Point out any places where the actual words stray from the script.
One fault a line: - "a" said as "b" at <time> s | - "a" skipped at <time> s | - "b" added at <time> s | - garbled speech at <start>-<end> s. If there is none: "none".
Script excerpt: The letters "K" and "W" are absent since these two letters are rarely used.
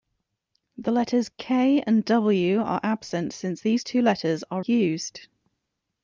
- "rarely" skipped at 4.6 s